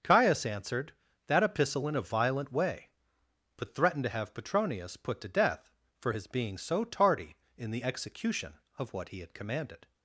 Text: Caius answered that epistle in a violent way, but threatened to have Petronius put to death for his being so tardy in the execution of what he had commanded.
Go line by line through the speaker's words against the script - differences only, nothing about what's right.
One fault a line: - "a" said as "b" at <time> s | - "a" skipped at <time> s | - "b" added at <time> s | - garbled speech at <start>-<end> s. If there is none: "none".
none